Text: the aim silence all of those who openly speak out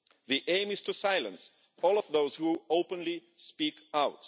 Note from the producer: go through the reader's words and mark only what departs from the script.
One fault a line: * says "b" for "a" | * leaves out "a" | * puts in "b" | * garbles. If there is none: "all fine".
* puts in "is to"